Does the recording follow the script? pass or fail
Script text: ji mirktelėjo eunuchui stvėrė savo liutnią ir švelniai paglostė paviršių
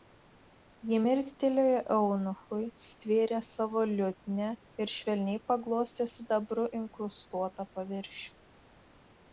fail